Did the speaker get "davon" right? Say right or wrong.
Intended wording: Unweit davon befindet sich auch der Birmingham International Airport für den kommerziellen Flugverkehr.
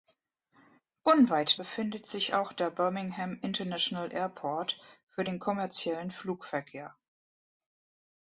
wrong